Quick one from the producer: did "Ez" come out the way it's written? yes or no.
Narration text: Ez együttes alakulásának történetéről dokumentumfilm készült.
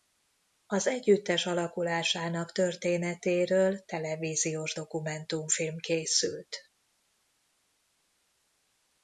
no